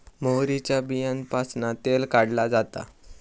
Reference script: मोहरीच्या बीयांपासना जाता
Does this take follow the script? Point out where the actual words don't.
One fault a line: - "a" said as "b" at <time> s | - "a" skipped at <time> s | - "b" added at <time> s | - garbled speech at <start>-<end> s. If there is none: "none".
- "तेल काढला" added at 1.9 s